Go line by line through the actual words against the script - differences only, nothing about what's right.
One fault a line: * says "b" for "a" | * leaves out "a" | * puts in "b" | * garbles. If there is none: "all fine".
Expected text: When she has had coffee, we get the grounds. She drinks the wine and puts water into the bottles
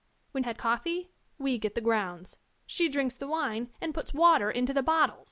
* leaves out "she has"